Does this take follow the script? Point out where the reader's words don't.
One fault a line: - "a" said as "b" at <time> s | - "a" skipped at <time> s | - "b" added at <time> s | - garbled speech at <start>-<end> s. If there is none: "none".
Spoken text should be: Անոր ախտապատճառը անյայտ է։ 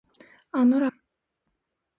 - "ախտապատճառը անյայտ" skipped at 0.8 s